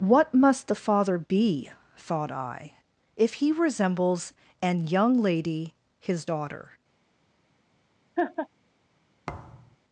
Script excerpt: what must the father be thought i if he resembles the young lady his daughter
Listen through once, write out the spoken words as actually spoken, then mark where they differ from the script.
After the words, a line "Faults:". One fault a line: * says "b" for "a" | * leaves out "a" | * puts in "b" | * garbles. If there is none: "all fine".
what must the father be thought i if he resembles an young lady his daughter
Faults:
* says "an" for "the"